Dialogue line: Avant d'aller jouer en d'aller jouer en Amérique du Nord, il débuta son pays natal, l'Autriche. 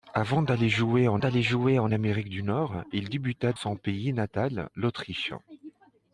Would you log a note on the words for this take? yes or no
no